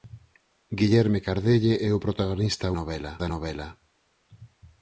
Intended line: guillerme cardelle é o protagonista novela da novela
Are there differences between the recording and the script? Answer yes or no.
no